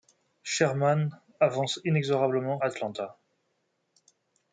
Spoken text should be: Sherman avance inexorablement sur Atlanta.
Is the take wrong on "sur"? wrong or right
wrong